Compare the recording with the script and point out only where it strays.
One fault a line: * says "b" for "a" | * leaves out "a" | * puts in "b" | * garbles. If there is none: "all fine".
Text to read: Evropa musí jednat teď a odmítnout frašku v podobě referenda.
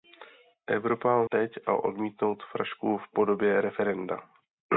* leaves out "musí jednat"